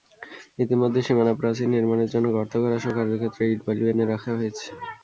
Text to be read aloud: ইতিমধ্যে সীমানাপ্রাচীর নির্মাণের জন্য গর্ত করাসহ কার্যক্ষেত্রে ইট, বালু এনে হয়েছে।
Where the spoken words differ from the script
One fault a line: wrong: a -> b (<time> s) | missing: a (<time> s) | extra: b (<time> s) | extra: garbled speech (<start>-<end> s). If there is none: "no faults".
extra: রাখা (4.0 s)